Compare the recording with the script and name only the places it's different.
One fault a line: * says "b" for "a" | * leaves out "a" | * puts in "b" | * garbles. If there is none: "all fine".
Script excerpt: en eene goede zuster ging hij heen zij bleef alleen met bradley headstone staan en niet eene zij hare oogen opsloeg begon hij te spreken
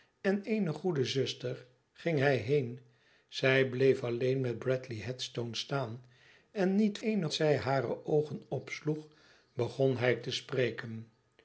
all fine